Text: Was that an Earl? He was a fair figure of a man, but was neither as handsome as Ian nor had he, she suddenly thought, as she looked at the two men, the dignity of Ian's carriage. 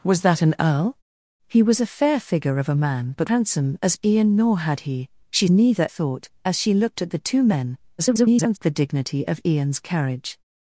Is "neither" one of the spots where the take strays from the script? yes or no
yes